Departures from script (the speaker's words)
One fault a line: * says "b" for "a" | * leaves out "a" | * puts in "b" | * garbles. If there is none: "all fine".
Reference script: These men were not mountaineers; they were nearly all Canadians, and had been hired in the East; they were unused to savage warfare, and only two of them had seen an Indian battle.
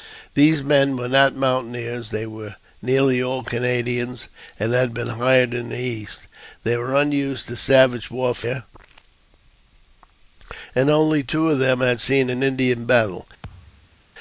all fine